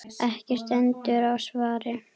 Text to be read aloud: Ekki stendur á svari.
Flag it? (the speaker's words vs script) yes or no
no